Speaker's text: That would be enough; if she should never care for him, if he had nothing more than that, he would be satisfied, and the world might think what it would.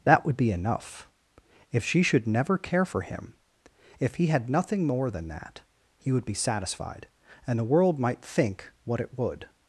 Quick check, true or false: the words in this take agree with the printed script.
true